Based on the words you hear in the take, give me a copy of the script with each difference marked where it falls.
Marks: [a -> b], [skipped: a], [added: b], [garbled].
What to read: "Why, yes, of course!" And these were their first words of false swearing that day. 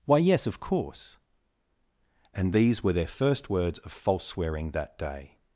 "Why, yes, of course!" And these were their first words of false swearing that day.